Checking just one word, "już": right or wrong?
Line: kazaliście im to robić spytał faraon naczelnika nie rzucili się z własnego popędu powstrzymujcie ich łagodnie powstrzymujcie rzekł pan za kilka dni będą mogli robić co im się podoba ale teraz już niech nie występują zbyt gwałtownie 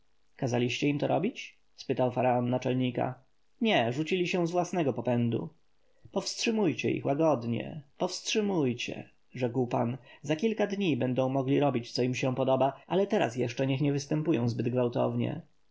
wrong